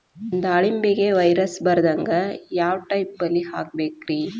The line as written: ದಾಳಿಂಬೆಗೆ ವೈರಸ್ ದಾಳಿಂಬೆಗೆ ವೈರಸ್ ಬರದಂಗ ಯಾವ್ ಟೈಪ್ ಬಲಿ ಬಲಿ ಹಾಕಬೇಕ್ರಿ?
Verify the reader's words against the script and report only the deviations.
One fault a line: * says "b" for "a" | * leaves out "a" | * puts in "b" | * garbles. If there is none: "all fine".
* leaves out "ದಾಳಿಂಬೆಗೆ ವೈರಸ್"
* leaves out "ಬಲಿ"